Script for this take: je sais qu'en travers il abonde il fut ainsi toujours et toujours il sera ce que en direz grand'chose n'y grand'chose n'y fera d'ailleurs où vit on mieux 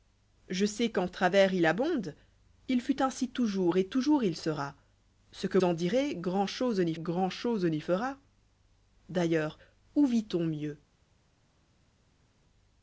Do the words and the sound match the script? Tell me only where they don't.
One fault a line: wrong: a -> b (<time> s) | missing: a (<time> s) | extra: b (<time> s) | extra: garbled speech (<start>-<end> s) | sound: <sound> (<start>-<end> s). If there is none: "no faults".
no faults